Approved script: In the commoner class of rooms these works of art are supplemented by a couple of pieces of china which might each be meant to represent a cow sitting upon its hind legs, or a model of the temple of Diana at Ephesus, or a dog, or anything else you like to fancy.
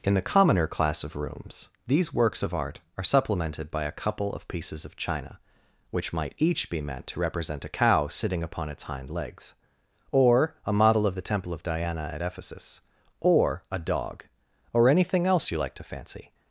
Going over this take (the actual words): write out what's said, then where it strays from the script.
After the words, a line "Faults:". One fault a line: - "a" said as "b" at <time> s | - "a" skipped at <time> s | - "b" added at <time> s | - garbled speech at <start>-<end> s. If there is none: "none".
In the commoner class of rooms these works of art are supplemented by a couple of pieces of china which might each be meant to represent a cow sitting upon its hind legs, or a model of the temple of Diana at Ephesus, or a dog, or anything else you like to fancy.
Faults:
none